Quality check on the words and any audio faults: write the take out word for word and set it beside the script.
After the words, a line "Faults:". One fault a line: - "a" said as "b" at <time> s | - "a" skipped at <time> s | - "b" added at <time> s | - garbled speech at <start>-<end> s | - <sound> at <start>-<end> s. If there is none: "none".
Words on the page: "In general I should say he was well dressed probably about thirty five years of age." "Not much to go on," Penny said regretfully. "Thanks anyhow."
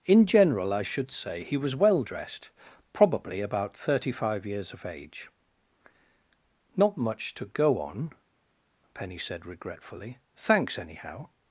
"In general I should say he was well dressed probably about thirty five years of age." "Not much to go on," Penny said regretfully. "Thanks anyhow."
Faults:
none